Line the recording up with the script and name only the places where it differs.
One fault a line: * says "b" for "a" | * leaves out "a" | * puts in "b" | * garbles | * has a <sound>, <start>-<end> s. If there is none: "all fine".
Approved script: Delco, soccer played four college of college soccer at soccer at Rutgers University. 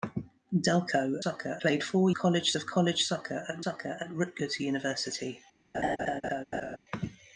* has a laugh, 5.7-6.8 s